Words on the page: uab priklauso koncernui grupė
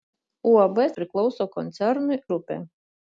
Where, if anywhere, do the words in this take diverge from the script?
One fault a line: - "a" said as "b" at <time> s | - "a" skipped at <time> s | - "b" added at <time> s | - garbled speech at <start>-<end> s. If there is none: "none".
none